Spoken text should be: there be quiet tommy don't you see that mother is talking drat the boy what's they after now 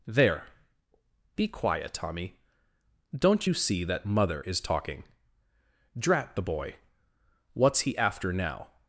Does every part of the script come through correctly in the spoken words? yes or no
no